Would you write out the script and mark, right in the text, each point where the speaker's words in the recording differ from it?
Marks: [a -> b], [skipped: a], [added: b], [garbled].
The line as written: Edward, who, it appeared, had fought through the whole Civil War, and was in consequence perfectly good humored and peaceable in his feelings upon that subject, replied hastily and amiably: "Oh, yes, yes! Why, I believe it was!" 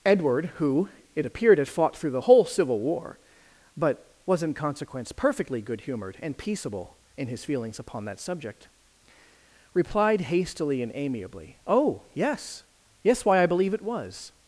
Edward, who, it appeared, had fought through the whole Civil War, [and -> but] was in consequence perfectly good humored and peaceable in his feelings upon that subject, replied hastily and amiably: "Oh, yes, yes! Why, I believe it was!"